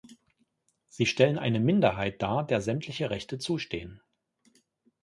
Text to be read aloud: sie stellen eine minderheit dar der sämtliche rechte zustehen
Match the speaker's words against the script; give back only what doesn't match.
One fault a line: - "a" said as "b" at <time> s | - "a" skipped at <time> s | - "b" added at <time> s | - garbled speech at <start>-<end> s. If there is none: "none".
none